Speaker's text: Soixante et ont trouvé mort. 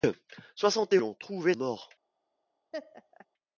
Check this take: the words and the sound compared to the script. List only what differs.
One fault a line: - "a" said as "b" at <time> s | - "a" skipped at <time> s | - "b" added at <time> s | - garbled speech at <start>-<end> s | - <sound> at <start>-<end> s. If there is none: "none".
- laugh at 2.7-3.3 s